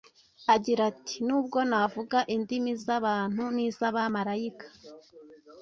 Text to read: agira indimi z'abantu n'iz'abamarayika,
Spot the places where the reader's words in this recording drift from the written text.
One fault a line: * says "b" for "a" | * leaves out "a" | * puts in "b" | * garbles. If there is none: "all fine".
* puts in "ati nubwo navuga"